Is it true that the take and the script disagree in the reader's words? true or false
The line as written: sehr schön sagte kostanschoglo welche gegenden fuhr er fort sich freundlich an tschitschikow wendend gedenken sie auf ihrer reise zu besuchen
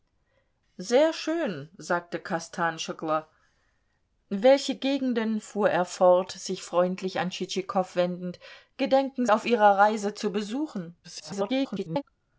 true